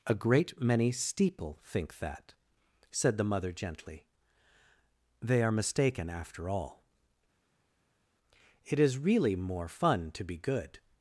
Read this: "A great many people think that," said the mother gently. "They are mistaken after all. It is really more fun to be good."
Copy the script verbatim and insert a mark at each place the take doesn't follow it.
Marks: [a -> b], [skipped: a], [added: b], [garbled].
"A great many [people -> steeple] think that," said the mother gently. "They are mistaken after all. It is really more fun to be good."